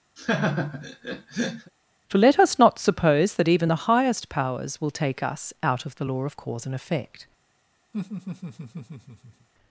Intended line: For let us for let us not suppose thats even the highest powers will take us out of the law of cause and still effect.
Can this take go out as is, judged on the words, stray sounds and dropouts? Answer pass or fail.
fail